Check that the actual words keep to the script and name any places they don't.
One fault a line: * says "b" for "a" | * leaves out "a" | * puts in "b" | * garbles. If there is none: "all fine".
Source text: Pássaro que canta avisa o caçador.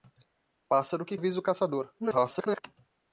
* leaves out "canta"
* garbles